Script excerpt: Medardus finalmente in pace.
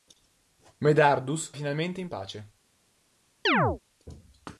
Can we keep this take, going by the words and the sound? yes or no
no